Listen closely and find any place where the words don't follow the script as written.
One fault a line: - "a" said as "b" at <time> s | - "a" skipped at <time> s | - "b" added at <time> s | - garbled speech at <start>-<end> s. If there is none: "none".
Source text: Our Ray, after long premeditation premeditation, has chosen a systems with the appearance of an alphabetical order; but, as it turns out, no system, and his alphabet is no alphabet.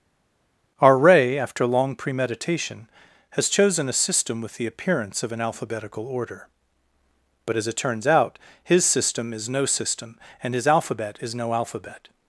- "premeditation" skipped at 2.9 s
- "systems" said as "system" at 3.9 s
- "his system is" added at 8.6 s